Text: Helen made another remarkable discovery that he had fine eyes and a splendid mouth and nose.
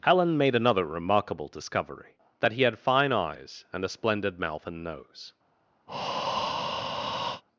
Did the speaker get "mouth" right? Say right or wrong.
right